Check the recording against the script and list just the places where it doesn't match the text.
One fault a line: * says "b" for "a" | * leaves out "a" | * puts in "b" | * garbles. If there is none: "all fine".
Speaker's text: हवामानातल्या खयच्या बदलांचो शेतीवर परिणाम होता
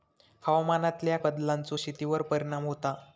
* leaves out "खयच्या"